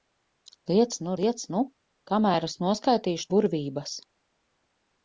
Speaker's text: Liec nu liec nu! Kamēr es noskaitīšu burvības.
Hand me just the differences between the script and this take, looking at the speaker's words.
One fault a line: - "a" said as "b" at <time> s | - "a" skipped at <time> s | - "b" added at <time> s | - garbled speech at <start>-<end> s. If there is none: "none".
none